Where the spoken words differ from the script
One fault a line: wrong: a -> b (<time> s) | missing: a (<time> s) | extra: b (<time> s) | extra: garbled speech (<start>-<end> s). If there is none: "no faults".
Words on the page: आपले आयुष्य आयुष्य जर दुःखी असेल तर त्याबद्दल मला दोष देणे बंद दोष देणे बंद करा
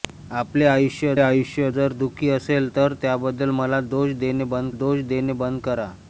no faults